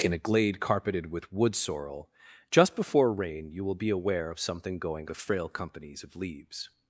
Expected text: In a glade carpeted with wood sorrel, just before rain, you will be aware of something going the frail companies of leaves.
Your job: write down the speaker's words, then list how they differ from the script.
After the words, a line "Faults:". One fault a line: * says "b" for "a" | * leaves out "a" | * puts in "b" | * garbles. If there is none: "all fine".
In a glade carpeted with wood sorrel, just before rain, you will be aware of something going the frail companies of leaves.
Faults:
all fine